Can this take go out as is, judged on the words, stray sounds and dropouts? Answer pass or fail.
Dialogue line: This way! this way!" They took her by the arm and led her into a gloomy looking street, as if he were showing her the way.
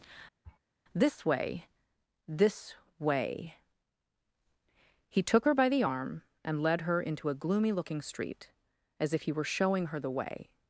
fail